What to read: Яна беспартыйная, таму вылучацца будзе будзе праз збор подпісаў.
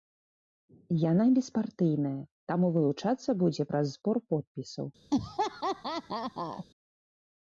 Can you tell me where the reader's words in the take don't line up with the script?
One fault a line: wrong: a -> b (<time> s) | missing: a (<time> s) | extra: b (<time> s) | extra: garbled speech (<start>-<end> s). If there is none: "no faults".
missing: будзе (3.6 s)